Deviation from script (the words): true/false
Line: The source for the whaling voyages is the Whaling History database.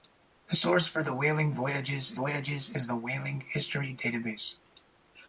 true